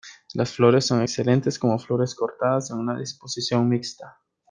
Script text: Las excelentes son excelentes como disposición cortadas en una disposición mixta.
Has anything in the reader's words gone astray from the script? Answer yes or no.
yes